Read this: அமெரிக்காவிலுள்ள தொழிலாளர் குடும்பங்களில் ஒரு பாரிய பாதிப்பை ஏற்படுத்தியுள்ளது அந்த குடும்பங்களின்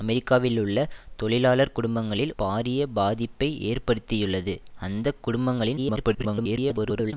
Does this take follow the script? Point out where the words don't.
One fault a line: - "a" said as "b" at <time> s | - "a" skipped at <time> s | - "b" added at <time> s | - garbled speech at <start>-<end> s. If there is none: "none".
- "ஒரு" skipped at 2.3 s
- garbled speech at 5.8-7.1 s